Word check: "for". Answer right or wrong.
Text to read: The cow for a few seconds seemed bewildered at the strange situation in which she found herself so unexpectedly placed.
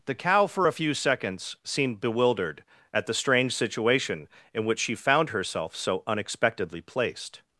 right